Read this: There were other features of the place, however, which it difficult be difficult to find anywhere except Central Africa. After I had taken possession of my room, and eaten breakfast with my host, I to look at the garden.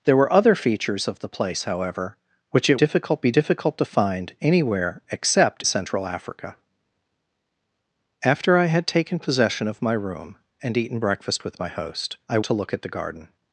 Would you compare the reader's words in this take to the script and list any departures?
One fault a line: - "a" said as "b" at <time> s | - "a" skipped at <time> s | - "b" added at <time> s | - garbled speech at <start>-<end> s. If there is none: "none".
none